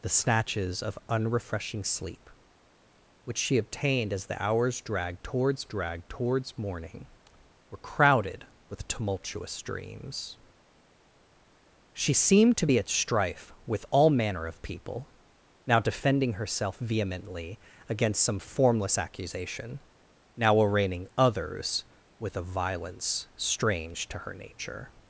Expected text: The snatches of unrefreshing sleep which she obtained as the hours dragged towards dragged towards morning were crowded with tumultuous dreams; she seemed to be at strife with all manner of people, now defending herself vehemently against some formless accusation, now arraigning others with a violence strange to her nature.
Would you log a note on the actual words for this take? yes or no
no